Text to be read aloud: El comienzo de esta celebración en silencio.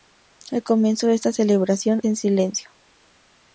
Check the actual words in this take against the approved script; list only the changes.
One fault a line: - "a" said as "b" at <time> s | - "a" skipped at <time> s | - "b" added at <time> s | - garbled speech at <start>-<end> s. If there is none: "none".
none